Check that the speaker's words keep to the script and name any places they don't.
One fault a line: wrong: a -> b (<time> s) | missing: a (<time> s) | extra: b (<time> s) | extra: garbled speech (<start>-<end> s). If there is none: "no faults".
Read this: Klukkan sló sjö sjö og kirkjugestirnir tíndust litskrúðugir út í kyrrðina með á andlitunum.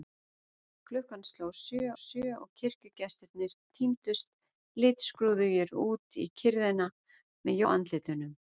no faults